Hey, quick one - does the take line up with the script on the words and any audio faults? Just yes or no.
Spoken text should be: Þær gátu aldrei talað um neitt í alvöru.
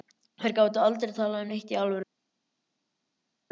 yes